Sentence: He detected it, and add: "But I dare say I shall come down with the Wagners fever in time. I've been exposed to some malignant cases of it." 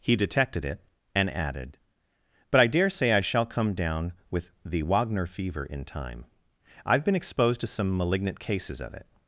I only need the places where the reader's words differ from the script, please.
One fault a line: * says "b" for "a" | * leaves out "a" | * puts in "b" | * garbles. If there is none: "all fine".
* says "added" for "add"
* says "Wagner" for "Wagners"